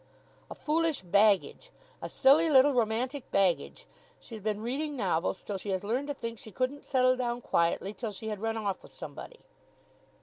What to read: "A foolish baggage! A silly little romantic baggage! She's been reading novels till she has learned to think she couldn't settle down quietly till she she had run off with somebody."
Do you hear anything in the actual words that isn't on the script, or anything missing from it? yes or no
yes